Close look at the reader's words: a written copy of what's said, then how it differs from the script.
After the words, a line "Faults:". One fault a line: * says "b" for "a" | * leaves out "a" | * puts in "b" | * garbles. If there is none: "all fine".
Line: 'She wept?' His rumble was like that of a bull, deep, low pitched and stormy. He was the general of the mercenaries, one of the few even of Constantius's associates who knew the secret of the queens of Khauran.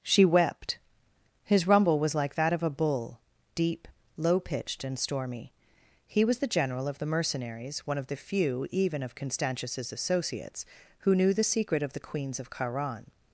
'She wept?' His rumble was like that of a bull, deep, low pitched and stormy. He was the general of the mercenaries, one of the few even of Constantius's associates who knew the secret of the queens of Khauran.
Faults:
all fine